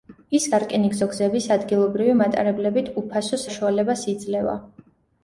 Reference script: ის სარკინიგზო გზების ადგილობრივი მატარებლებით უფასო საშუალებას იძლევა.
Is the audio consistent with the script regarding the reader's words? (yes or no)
yes